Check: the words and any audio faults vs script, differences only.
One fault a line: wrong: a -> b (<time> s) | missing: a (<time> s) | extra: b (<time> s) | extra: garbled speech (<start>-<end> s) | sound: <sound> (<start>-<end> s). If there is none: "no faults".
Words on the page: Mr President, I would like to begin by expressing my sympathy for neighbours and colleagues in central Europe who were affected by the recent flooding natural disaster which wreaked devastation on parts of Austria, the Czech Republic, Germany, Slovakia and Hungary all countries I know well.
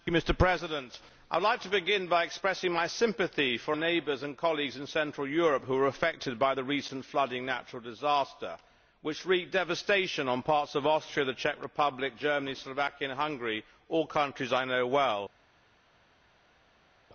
no faults